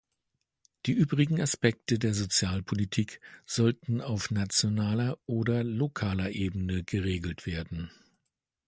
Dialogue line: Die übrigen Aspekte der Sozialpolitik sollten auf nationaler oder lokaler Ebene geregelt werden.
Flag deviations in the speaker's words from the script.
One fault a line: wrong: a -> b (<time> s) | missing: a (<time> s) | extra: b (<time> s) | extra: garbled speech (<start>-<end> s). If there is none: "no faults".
no faults